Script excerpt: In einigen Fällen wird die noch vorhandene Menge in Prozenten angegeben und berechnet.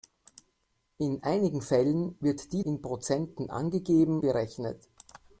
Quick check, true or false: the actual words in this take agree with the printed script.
false